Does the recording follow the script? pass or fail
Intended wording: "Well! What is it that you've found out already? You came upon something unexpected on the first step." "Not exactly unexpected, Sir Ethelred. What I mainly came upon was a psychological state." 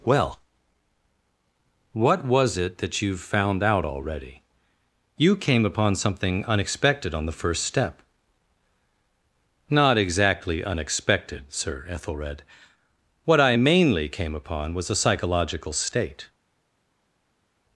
fail